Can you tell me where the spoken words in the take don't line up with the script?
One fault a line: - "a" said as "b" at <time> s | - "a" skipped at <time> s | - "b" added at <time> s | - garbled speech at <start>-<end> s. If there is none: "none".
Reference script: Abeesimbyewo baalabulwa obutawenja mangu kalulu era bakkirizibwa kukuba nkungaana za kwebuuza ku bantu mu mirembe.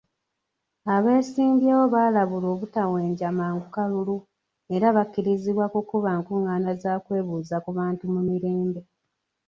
none